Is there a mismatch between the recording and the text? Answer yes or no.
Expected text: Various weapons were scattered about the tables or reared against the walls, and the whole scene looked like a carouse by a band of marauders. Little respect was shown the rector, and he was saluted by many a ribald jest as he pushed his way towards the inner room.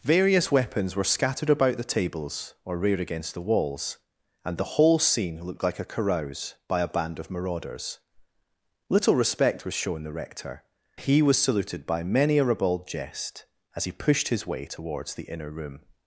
yes